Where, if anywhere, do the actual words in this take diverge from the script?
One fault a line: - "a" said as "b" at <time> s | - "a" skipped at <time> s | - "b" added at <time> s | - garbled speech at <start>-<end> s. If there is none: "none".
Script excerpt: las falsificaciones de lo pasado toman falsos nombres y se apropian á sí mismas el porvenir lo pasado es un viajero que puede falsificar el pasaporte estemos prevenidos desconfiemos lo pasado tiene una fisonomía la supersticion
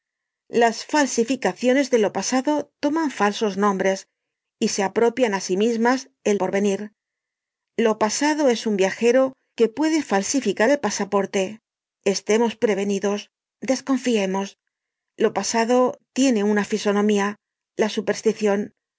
none